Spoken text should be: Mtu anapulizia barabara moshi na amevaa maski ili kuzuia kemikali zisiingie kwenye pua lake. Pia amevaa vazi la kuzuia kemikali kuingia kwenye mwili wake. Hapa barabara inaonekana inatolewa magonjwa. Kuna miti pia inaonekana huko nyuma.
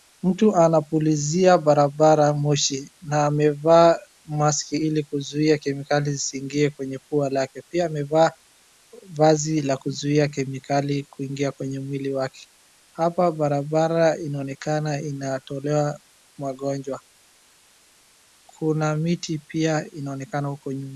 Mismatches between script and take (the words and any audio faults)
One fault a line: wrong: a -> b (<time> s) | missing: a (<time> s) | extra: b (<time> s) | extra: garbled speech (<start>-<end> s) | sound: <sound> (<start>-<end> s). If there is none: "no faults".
no faults